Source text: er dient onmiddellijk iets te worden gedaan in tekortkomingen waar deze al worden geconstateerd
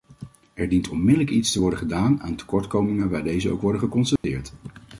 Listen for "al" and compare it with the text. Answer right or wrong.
wrong